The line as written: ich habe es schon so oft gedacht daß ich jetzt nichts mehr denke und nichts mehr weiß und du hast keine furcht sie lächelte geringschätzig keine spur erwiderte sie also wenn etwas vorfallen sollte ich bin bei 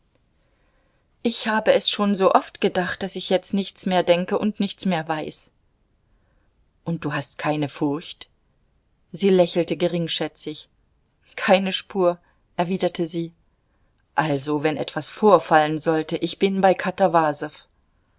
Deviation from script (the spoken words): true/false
false